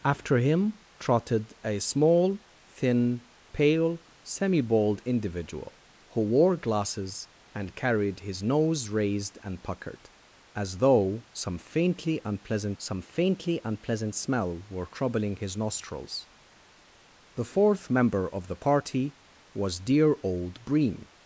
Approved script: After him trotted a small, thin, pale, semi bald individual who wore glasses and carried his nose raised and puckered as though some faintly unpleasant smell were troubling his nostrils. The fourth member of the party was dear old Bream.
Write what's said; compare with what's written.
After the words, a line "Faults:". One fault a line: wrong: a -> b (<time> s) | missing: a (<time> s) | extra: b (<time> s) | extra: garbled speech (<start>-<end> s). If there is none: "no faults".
After him trotted a small, thin, pale, semi bald individual who wore glasses and carried his nose raised and puckered as though some faintly unpleasant some faintly unpleasant smell were troubling his nostrils. The fourth member of the party was dear old Bream.
Faults:
extra: some faintly unpleasant (12.8 s)